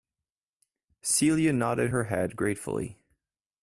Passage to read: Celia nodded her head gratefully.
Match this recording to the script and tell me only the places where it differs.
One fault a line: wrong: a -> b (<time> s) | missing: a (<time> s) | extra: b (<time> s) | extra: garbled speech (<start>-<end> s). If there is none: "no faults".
no faults